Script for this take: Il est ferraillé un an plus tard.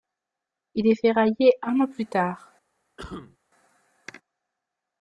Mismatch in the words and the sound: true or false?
true